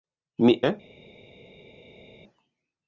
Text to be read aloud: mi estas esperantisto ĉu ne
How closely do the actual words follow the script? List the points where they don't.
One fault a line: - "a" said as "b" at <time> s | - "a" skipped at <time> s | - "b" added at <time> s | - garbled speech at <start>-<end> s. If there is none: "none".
- "estas esperantisto ĉu" skipped at 0.5 s